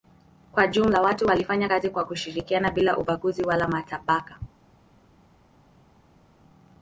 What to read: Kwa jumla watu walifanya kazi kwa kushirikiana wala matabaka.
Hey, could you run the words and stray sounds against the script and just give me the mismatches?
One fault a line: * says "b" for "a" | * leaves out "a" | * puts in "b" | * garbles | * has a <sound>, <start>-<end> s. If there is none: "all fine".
* puts in "bila ubaguzi"